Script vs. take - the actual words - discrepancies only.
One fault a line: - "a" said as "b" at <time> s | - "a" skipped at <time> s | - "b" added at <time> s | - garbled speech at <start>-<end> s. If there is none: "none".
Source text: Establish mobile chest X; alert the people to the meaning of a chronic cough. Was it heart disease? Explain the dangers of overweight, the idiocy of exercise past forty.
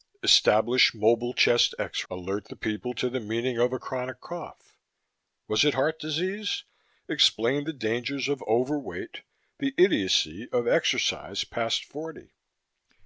none